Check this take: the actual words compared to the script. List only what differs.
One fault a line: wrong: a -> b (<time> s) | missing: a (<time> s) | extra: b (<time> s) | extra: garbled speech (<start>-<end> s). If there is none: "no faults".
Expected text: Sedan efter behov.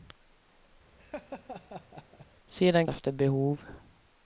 no faults